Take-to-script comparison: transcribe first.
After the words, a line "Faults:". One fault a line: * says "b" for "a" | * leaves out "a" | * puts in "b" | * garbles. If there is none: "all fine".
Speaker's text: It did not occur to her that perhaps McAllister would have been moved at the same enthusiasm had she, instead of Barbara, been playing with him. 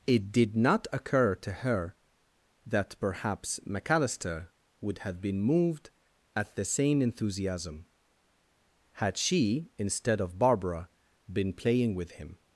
It did not occur to her that perhaps McAllister would have been moved at the same enthusiasm had she, instead of Barbara, been playing with him.
Faults:
all fine